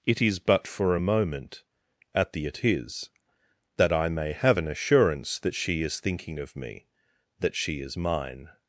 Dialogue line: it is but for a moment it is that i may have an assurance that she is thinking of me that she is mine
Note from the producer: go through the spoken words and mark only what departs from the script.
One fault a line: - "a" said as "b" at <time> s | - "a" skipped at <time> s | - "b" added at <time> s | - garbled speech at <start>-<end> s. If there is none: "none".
- "at the" added at 2.1 s